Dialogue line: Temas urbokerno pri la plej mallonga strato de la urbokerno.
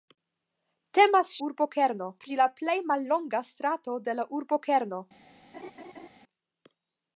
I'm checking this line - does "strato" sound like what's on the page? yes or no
yes